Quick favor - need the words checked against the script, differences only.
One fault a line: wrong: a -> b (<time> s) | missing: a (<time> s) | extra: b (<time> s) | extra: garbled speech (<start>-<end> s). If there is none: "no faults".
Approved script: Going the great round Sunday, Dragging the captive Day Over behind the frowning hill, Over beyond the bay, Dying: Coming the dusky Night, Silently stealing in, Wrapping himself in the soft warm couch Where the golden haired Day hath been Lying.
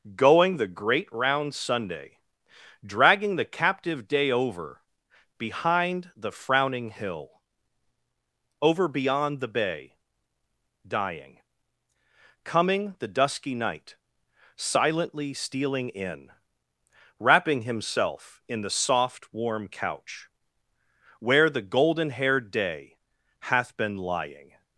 no faults